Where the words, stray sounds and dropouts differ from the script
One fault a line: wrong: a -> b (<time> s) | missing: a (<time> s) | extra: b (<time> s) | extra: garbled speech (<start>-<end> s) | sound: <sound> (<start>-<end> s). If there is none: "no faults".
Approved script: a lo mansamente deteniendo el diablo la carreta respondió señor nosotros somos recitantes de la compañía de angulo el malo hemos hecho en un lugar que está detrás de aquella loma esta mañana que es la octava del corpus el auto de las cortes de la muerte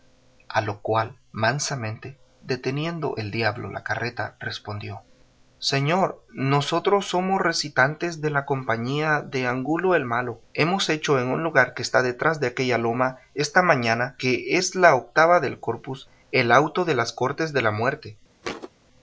extra: cual (0.8 s)
sound: thud (18.4-18.7 s)